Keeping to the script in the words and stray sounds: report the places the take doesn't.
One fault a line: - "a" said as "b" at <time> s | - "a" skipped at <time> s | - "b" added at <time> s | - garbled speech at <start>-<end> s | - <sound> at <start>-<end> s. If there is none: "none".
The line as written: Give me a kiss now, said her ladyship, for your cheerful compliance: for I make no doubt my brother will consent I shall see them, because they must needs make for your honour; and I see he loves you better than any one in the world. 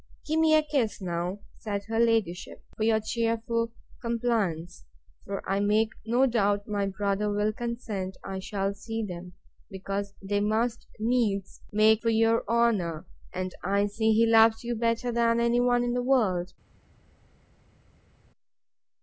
none